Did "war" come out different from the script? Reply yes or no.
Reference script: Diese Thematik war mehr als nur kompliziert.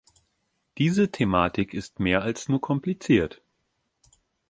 yes